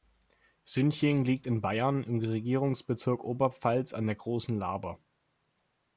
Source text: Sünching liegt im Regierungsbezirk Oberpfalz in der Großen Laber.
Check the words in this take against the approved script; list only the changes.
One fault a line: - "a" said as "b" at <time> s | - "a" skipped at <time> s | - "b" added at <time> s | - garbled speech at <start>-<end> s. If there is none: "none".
- "in Bayern" added at 1.4 s
- "in" said as "an" at 3.9 s